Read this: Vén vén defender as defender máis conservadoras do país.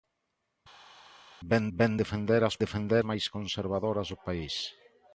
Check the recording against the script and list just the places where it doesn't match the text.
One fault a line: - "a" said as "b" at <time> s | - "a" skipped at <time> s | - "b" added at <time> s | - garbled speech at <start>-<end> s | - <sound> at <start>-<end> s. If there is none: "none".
none